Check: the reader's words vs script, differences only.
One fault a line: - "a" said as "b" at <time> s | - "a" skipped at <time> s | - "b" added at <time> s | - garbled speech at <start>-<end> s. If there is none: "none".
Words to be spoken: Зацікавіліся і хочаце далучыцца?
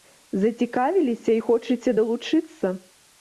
none